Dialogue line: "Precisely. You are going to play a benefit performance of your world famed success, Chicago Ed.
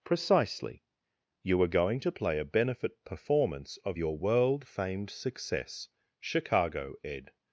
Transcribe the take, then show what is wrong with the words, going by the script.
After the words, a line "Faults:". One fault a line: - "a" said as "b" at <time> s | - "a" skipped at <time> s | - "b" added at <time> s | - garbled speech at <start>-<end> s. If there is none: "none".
"Precisely. You are going to play a benefit performance of your world famed success, Chicago Ed.
Faults:
none